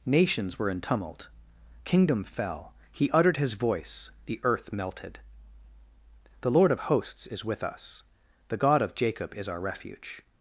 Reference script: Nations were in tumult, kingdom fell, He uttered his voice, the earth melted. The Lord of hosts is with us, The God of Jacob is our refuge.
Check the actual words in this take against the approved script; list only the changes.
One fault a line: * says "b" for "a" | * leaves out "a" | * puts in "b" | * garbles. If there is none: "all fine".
all fine